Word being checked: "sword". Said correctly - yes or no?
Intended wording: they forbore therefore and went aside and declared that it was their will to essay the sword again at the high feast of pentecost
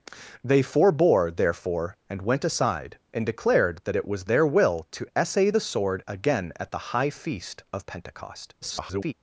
yes